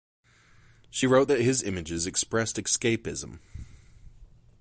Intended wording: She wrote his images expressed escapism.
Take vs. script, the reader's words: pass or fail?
fail